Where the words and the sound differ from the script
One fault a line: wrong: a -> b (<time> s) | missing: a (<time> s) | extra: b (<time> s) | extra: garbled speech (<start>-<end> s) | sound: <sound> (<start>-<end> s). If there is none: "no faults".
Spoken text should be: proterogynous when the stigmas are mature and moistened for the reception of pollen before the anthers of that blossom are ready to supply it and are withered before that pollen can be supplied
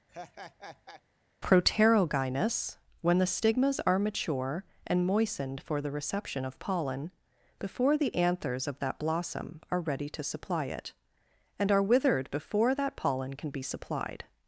sound: laugh (0.1-1.0 s)